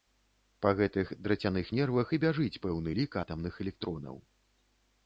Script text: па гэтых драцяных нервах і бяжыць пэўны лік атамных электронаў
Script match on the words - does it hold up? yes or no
yes